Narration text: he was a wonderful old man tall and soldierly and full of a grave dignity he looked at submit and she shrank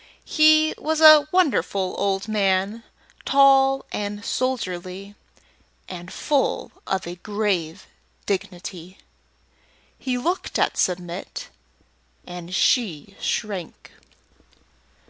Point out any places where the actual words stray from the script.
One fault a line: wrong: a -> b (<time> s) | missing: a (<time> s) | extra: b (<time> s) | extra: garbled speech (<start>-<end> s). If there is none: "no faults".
no faults